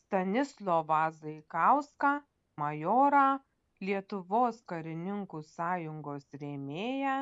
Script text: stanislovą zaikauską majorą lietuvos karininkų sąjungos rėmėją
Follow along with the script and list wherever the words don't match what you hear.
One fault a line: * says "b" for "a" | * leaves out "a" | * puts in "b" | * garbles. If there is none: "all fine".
all fine